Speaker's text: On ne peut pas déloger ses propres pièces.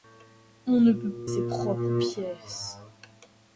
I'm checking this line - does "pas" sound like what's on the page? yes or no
no